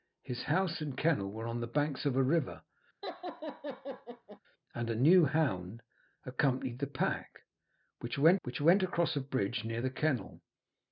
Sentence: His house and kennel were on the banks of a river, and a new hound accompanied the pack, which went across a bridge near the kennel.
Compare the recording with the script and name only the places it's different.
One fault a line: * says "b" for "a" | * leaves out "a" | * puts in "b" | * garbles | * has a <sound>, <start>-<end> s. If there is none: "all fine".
* has a laugh, 3.0-4.4 s
* puts in "which went"